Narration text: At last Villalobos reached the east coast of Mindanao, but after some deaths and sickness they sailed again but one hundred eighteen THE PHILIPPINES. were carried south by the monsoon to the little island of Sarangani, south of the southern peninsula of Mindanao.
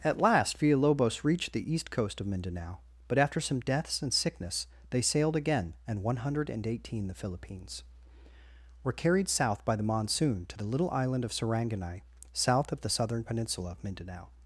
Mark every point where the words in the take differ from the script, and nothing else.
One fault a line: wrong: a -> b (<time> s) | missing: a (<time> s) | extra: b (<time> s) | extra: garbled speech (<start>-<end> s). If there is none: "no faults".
wrong: but -> and (5.9 s)